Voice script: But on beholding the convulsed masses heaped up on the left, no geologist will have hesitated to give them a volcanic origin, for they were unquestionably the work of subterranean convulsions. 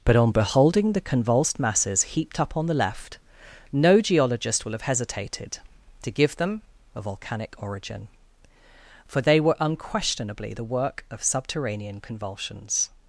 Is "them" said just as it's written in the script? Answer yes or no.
yes